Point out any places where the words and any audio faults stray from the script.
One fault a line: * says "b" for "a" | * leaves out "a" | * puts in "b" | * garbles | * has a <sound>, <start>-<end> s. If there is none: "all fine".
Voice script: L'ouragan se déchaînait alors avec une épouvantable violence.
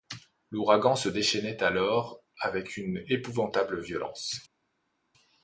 all fine